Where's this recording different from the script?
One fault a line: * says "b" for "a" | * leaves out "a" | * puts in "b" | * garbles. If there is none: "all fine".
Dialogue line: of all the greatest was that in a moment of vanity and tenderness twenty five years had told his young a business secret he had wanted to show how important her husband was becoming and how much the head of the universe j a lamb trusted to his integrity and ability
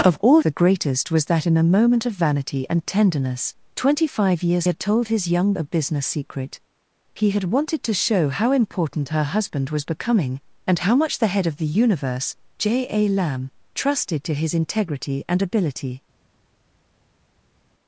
all fine